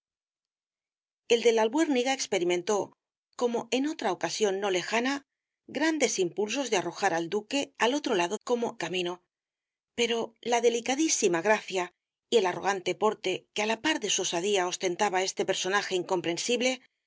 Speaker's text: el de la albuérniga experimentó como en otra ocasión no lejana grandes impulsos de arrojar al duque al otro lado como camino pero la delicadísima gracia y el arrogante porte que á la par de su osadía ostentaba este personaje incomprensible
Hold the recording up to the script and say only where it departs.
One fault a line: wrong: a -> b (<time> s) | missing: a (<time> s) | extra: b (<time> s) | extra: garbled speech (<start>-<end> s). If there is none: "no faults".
no faults